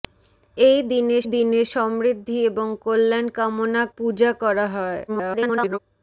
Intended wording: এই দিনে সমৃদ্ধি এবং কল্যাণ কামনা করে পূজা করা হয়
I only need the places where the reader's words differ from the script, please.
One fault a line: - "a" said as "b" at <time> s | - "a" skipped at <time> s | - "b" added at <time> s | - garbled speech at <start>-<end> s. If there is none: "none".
- "দিনে" added at 1.3 s
- "করে" skipped at 3.8 s
- garbled speech at 5.1-5.8 s